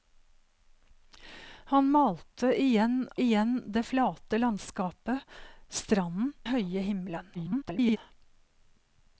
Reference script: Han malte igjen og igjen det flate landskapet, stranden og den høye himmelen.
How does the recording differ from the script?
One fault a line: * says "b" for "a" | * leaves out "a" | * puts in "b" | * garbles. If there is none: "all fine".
* leaves out "og"
* leaves out "og den"
* garbles